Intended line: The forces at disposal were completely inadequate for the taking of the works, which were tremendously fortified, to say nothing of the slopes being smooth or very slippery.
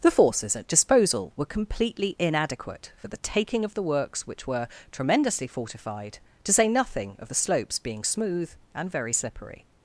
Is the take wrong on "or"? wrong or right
wrong